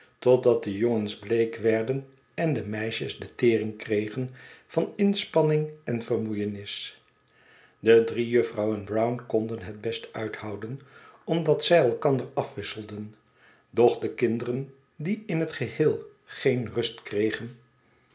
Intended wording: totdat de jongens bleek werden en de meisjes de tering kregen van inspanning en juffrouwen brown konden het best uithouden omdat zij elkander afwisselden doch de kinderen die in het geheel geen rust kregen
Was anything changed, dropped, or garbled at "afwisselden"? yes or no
no